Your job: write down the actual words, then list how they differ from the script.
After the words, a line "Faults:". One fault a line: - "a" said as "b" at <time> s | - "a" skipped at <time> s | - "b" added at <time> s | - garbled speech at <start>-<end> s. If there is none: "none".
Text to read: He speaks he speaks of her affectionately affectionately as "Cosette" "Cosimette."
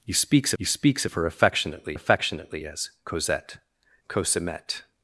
He speaks he speaks of her affectionately affectionately as "Cosette" "Cosimette."
Faults:
none